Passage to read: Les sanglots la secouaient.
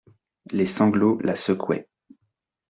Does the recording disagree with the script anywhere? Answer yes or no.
no